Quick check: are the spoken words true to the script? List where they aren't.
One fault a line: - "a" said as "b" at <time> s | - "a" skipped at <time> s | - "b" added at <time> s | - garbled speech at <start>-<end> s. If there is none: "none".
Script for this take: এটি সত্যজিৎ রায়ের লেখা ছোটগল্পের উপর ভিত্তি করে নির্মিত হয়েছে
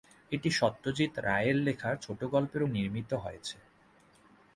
- "উপর ভিত্তি করে" skipped at 2.6 s